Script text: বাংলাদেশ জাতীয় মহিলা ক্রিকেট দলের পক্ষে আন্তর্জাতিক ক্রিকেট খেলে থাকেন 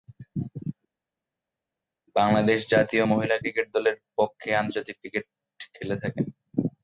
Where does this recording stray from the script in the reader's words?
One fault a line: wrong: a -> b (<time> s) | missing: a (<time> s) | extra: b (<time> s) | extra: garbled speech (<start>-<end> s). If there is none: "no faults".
no faults